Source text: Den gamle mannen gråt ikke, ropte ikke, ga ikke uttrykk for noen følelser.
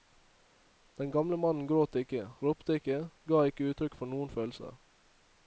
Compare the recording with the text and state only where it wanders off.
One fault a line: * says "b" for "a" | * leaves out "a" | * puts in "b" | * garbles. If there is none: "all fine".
all fine